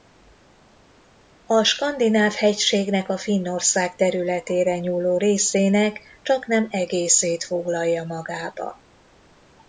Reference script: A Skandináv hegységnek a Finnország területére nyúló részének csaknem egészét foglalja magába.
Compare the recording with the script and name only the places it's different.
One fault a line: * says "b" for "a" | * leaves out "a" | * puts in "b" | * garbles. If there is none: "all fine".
all fine